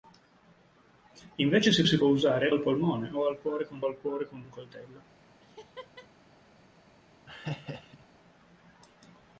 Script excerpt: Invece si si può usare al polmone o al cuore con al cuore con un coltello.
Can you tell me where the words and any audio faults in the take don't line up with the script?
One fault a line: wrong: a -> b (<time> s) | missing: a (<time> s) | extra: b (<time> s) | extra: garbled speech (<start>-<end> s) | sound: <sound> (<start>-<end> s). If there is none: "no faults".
sound: laugh (5.4-6.1 s)
sound: laugh (7.3-8.1 s)